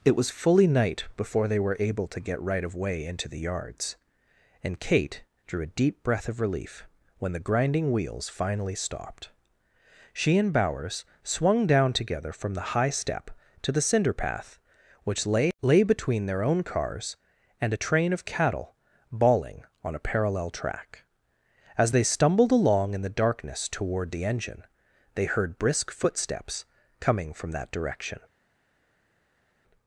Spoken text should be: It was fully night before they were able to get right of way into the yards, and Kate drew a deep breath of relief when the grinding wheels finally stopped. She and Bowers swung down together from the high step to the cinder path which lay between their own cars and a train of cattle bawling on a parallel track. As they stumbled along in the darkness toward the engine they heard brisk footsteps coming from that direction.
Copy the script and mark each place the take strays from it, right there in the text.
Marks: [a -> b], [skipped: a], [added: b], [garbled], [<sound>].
It was fully night before they were able to get right of way into the yards, and Kate drew a deep breath of relief when the grinding wheels finally stopped. She and Bowers swung down together from the high step to the cinder path which lay [added: lay] between their own cars and a train of cattle bawling on a parallel track. As they stumbled along in the darkness toward the engine they heard brisk footsteps coming from that direction.